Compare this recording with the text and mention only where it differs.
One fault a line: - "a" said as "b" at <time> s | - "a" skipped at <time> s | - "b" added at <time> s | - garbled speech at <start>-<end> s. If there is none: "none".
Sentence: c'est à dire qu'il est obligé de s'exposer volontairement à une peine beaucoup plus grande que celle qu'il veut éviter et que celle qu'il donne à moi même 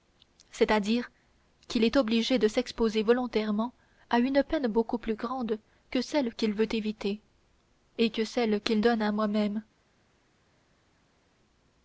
none